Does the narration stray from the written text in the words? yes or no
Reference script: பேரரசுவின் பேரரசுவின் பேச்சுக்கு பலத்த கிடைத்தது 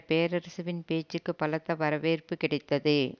yes